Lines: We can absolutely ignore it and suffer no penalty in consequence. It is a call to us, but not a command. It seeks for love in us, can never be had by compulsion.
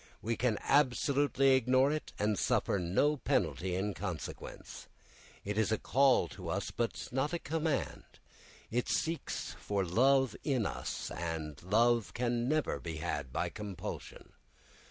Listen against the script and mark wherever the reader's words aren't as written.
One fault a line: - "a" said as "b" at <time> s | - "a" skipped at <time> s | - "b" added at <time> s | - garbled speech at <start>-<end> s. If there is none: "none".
- "and love" added at 11.1 s